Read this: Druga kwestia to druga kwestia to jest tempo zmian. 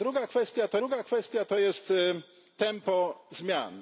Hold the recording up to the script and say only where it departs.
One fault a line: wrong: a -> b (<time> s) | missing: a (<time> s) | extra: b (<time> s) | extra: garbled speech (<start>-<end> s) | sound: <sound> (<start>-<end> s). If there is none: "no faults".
no faults